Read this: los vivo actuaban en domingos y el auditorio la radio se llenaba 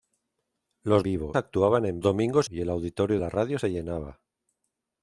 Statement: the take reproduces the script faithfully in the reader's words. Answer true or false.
true